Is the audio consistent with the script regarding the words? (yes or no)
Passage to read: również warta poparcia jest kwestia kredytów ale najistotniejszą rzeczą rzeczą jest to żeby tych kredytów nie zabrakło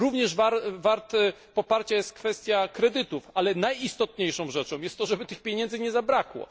no